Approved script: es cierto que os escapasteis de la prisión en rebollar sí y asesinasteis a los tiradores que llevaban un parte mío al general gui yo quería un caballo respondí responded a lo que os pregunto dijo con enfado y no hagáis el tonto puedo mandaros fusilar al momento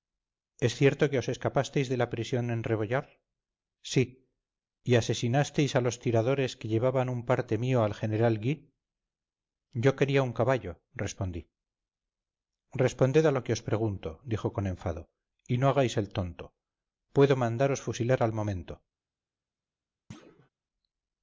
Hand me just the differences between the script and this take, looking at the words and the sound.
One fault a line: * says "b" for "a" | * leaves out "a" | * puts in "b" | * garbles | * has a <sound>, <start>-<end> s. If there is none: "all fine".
* has a thud, 20.1-20.5 s